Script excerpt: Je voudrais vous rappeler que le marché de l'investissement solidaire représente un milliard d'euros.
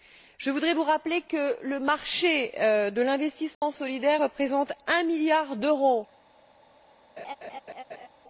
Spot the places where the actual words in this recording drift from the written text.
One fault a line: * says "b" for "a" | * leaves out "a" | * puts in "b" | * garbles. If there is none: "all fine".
all fine